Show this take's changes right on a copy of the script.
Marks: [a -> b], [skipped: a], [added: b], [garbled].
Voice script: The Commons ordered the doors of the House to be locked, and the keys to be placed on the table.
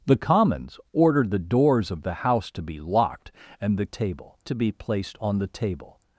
The Commons ordered the doors of the House to be locked, and the [keys -> table] to be placed on the table.